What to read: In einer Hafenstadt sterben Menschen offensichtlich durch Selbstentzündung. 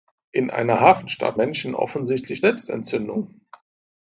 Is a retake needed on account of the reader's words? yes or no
yes